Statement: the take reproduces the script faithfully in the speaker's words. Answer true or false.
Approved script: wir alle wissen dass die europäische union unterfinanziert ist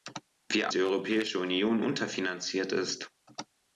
false